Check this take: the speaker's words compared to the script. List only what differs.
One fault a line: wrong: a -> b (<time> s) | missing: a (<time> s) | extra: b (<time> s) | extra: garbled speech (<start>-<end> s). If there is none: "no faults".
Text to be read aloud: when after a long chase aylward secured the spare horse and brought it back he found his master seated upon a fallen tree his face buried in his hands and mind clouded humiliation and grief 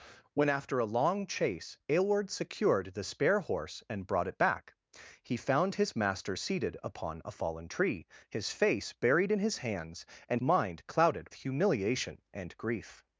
no faults